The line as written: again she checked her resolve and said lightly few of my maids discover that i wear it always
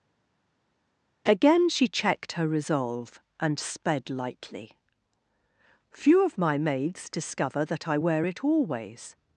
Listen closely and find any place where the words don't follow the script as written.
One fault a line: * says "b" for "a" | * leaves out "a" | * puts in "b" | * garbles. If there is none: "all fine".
* says "sped" for "said"